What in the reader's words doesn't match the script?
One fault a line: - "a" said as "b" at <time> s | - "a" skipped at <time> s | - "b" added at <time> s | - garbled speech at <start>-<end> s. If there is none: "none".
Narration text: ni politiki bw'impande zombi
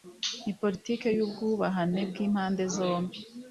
- "y'ubwubahane" added at 1.2 s